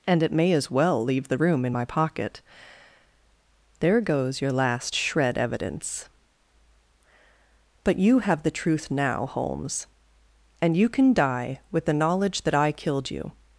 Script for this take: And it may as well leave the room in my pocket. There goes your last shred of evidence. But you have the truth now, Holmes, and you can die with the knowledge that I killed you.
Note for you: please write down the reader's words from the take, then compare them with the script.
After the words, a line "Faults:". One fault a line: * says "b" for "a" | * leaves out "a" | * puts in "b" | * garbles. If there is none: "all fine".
And it may as well leave the room in my pocket. There goes your last shred evidence. But you have the truth now, Holmes, and you can die with the knowledge that I killed you.
Faults:
* leaves out "of"